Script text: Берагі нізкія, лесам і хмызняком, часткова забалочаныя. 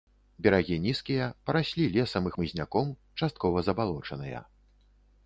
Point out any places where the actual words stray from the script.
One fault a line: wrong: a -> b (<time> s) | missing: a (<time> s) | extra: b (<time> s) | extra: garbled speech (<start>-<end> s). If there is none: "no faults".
extra: параслі (1.5 s)